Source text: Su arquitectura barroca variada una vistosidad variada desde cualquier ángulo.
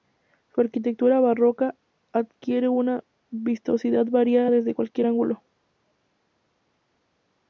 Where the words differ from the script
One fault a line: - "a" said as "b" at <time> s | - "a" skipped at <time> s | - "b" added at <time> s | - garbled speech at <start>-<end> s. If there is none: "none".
- "variada" said as "adquiere" at 2.1 s